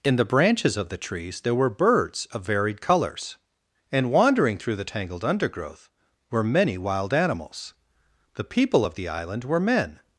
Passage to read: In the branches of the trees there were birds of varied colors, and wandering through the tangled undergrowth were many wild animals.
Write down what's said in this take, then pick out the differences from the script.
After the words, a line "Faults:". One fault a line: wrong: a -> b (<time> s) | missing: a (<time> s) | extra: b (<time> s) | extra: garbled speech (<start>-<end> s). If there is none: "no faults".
In the branches of the trees there were birds of varied colors, and wandering through the tangled undergrowth were many wild animals. The people of the island were men
Faults:
extra: The people of the island were men (8.3 s)